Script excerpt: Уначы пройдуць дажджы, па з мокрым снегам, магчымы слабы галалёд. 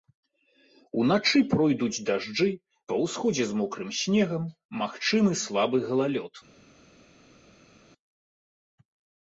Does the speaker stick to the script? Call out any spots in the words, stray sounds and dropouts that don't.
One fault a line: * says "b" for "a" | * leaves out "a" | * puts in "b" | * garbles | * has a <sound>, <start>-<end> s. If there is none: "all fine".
* puts in "ўсходзе"